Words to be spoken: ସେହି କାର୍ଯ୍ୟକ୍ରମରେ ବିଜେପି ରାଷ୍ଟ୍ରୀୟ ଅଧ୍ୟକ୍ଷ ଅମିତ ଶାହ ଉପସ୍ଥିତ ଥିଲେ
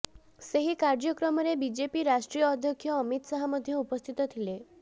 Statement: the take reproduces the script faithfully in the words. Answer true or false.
false